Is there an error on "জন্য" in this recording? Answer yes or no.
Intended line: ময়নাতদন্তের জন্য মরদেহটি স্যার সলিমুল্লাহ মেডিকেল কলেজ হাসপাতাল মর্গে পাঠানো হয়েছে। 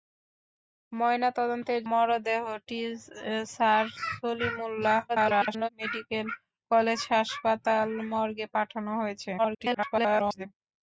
yes